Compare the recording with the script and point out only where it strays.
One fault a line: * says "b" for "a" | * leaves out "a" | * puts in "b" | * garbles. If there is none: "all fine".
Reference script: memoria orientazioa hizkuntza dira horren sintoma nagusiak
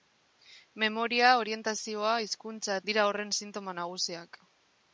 all fine